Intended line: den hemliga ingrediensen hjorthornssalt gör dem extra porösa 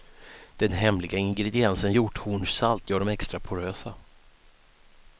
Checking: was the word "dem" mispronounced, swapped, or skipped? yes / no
no